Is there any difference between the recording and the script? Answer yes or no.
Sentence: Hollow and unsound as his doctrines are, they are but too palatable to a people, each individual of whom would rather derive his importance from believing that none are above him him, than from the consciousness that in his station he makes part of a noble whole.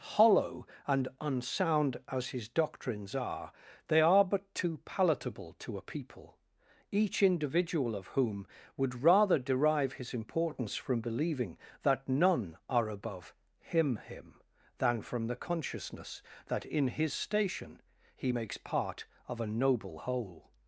no